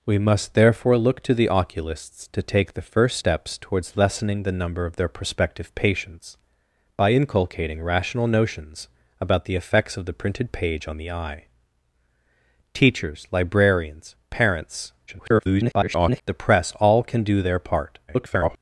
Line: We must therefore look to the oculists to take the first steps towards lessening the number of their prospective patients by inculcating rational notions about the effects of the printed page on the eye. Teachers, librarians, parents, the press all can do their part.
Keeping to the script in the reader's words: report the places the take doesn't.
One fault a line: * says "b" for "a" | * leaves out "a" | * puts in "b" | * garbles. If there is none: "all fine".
* garbles
* garbles